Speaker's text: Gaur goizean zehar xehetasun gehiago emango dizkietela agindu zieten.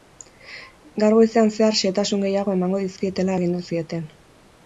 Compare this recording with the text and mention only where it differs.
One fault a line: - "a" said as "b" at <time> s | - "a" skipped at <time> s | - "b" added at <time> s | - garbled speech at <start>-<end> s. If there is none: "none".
none